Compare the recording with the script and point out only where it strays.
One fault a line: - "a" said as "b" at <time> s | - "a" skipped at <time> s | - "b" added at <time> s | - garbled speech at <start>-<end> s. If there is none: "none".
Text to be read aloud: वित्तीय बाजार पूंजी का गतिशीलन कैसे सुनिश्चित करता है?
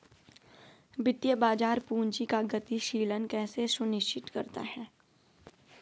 none